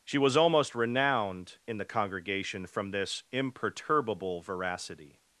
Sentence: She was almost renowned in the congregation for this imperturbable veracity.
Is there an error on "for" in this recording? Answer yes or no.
yes